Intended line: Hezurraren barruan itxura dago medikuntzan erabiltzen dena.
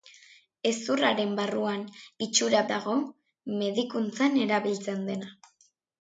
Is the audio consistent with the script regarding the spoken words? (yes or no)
yes